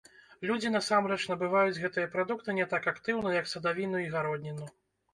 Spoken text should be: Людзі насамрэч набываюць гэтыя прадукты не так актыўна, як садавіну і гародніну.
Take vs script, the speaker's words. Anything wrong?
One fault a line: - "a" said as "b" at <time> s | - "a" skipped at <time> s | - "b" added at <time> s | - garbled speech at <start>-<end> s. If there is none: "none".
none